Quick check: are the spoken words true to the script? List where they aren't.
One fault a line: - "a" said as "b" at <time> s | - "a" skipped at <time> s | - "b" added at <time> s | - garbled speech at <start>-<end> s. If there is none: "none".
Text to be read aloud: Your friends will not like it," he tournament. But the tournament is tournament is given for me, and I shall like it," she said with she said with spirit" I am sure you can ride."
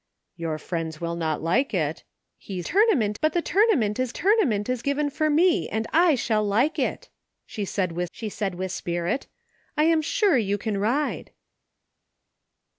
none